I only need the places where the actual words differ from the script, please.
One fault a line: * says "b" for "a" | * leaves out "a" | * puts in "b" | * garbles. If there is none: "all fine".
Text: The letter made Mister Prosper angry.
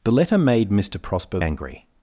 all fine